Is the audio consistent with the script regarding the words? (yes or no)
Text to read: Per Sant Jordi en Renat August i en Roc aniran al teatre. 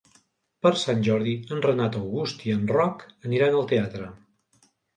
yes